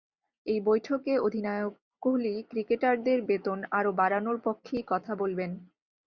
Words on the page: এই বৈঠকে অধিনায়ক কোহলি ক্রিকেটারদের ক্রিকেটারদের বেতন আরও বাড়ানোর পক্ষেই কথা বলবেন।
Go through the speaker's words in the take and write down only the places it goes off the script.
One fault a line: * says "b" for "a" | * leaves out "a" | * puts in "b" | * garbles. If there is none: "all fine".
* leaves out "ক্রিকেটারদের"